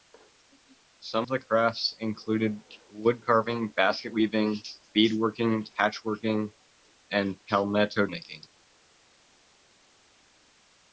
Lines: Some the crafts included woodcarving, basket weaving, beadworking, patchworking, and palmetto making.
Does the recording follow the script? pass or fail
pass